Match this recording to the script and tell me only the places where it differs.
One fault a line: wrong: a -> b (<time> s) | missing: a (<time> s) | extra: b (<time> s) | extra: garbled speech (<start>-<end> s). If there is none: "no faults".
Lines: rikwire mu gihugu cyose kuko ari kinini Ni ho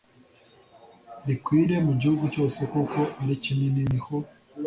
no faults